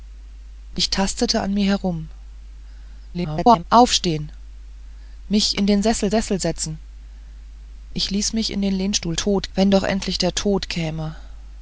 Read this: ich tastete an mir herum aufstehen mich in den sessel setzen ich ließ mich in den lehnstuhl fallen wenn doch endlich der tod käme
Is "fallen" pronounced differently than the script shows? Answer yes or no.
yes